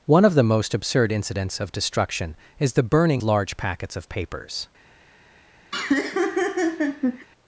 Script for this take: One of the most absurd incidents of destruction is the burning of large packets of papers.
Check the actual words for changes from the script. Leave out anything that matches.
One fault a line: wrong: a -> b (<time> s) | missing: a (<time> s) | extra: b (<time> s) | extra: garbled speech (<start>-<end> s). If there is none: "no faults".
missing: of (3.2 s)